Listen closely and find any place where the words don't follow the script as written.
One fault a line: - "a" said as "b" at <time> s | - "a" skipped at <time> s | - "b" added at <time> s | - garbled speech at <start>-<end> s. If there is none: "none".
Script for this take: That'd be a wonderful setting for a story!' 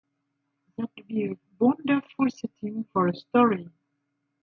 none